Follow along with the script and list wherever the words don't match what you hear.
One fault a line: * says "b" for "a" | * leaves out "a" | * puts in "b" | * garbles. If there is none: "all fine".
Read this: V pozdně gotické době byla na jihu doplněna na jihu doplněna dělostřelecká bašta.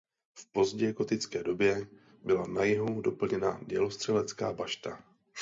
* leaves out "na jihu doplněna"